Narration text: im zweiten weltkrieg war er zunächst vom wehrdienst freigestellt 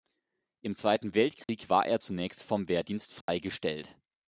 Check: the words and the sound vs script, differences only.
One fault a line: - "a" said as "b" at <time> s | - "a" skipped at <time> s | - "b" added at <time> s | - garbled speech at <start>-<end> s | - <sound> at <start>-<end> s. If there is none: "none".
- dropout at 1.4-1.5 s
- dropout at 3.2-3.3 s